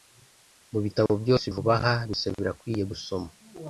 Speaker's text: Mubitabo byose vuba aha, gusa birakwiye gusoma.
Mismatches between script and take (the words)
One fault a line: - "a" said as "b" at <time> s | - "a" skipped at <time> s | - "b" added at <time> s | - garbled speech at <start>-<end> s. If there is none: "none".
none